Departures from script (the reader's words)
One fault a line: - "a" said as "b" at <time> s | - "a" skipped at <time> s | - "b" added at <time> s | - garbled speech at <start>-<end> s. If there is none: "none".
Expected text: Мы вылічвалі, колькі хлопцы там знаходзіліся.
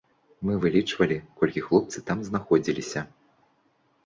none